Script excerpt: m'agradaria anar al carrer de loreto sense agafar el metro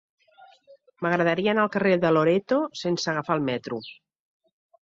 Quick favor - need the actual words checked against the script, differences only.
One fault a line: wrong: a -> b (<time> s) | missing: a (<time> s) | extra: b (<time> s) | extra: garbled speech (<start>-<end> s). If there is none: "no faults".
no faults